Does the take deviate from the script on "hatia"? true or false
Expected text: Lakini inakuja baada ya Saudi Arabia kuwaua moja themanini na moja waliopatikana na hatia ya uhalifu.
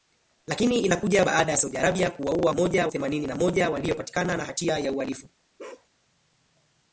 false